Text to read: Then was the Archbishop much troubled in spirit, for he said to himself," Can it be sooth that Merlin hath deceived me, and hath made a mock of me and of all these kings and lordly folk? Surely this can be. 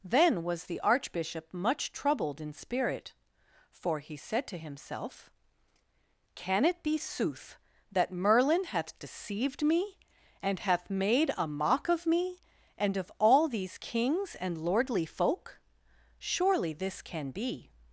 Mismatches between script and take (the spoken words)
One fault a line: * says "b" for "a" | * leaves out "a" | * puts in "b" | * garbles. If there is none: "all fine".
all fine